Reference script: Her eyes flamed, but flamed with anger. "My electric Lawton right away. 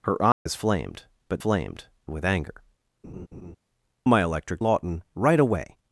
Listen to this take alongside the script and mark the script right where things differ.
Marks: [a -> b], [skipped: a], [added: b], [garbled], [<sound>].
Her eyes [dropout] flamed, but flamed with anger. [laugh] "My electric Lawton right away.